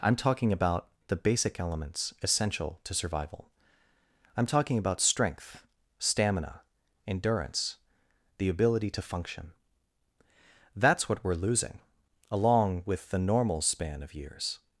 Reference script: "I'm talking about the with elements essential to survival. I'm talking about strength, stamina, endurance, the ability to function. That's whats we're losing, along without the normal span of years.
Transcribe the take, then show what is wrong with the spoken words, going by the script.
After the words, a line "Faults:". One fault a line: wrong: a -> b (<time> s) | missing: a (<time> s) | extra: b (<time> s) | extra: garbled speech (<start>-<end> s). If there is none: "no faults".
"I'm talking about the basic elements essential to survival. I'm talking about strength, stamina, endurance, the ability to function. That's what we're losing, along with the normal span of years.
Faults:
wrong: with -> basic (1.1 s)
wrong: whats -> what (11.1 s)
wrong: without -> with (12.8 s)